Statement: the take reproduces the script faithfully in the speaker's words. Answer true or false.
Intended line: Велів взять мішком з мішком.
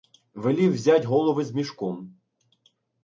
false